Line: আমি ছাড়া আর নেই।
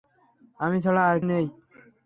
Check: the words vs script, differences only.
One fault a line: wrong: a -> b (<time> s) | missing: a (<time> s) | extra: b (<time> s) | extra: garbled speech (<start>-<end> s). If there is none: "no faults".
no faults